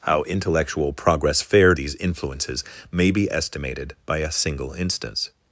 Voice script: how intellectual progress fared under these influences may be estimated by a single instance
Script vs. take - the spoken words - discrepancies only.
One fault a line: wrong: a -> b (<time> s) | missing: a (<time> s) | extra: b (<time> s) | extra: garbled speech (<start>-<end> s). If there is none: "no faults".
missing: under (1.8 s)